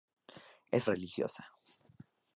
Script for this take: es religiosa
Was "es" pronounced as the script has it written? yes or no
yes